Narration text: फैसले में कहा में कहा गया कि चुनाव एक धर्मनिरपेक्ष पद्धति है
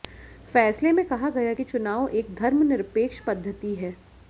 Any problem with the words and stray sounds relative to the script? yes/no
yes